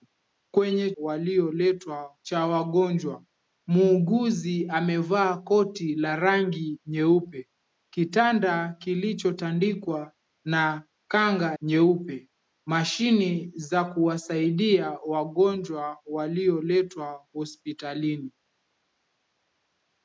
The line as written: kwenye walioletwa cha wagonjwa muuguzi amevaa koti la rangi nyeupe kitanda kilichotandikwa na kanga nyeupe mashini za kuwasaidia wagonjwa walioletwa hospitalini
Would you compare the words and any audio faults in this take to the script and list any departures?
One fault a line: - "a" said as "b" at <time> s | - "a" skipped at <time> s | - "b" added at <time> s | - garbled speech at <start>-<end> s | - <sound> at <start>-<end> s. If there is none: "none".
none